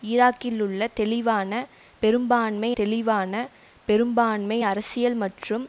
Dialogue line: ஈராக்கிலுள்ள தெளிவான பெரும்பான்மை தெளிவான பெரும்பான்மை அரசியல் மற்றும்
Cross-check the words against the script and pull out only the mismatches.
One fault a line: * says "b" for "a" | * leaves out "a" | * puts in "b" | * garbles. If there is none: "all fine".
all fine